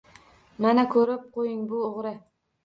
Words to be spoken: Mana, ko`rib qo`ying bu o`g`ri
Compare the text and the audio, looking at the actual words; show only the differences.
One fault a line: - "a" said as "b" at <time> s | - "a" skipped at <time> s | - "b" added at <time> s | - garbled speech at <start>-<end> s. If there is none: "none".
none